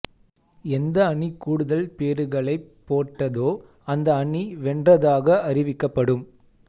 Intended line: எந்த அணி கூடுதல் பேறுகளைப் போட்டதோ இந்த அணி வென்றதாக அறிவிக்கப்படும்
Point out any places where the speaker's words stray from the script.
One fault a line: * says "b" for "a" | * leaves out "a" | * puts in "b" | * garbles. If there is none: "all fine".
* says "அந்த" for "இந்த"